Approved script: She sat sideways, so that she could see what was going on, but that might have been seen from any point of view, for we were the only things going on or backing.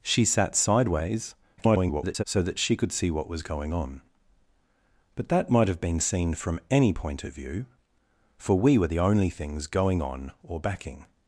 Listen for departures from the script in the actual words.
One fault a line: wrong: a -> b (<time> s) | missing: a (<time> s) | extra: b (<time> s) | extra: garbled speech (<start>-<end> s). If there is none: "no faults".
extra: garbled speech (1.6-2.2 s)